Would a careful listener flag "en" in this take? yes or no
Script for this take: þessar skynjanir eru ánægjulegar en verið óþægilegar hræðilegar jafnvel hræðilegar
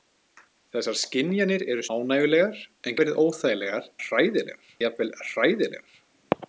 no